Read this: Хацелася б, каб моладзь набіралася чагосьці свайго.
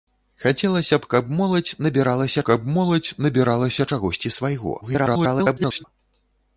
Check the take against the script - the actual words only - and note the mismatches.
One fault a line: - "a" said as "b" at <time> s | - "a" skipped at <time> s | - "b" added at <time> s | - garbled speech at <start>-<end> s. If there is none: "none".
- "каб моладзь набіралася" added at 2.5 s
- garbled speech at 4.8-5.8 s